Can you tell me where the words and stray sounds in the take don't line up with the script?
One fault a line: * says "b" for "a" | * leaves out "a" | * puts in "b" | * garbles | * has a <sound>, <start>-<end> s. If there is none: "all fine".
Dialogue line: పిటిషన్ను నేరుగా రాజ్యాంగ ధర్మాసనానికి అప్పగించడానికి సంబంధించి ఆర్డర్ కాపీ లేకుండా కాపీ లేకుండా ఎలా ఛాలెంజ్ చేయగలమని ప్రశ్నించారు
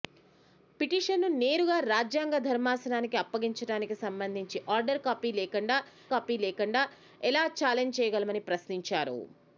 all fine